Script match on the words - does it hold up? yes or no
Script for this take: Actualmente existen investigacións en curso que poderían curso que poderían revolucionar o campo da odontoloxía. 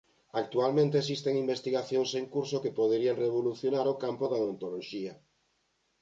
no